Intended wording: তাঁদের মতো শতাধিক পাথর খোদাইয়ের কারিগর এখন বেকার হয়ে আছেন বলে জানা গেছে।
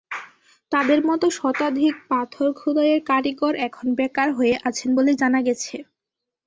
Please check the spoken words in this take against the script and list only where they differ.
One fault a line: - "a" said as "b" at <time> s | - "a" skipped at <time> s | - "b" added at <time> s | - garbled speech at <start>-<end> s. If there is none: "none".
none